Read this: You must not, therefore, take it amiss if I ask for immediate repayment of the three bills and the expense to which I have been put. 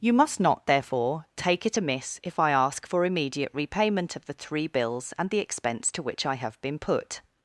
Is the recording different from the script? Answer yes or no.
no